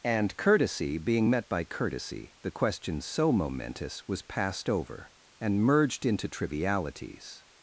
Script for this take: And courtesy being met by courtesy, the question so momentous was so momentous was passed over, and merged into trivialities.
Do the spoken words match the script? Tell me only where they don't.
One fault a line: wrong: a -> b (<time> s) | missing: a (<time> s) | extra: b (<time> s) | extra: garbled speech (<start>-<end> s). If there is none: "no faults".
missing: so momentous was (4.2 s)